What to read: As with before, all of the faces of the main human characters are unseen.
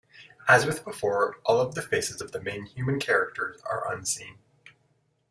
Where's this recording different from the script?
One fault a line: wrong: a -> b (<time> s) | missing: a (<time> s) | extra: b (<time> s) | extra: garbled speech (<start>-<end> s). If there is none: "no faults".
no faults